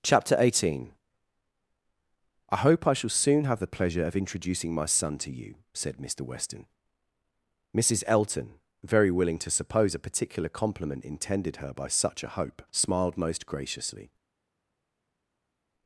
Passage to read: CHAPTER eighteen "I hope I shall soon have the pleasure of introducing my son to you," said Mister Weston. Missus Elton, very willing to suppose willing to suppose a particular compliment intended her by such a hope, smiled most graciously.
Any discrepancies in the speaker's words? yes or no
yes